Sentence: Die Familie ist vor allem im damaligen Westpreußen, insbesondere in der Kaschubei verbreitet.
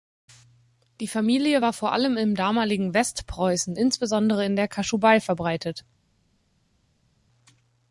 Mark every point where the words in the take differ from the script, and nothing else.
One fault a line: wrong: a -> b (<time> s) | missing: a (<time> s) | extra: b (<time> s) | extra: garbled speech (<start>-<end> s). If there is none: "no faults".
wrong: ist -> war (1.6 s)